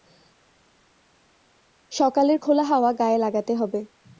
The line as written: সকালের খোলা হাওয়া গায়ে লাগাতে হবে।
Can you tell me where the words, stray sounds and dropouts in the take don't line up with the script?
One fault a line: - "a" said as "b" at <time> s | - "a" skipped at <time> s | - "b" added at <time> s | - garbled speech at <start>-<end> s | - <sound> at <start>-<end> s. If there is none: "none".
none